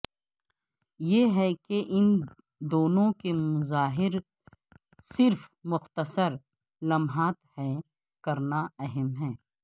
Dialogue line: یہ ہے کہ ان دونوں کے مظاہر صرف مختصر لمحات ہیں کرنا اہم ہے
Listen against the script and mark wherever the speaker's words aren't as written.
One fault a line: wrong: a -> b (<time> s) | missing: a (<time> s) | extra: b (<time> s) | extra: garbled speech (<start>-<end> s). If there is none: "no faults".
no faults